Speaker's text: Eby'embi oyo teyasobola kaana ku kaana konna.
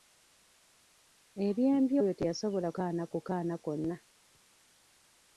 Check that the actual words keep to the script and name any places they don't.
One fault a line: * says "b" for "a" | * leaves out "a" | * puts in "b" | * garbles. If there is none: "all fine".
all fine